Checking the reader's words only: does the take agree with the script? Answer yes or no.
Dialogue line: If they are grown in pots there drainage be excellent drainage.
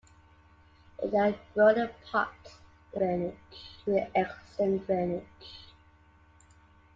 yes